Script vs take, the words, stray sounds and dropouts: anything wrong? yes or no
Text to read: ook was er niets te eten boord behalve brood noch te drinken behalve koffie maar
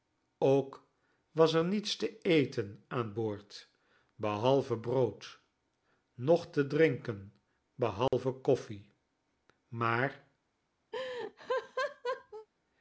yes